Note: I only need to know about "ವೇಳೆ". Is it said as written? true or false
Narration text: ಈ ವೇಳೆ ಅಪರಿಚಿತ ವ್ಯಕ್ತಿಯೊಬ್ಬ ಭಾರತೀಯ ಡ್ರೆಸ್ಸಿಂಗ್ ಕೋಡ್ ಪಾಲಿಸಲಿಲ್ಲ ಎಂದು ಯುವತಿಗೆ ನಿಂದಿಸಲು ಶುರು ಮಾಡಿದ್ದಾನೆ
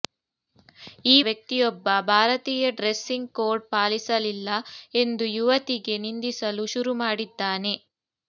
false